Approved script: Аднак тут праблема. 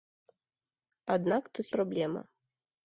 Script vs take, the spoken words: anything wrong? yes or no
no